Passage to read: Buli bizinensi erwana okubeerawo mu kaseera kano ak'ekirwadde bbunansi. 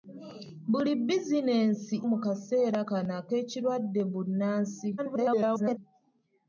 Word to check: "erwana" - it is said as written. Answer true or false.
false